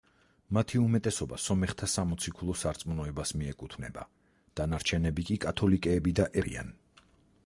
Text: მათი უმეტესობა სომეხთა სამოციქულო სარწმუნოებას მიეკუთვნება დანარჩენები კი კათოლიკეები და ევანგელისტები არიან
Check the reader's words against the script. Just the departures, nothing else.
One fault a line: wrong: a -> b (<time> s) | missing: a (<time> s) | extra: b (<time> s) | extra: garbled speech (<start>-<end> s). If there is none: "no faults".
missing: ევანგელისტები (6.3 s)